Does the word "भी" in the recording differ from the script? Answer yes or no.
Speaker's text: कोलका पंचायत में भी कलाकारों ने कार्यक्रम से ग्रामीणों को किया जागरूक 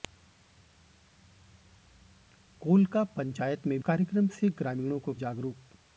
yes